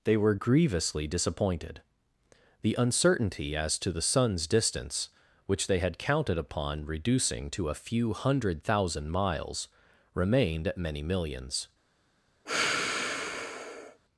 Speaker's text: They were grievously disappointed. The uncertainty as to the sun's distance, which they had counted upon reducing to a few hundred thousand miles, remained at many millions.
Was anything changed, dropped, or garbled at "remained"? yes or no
no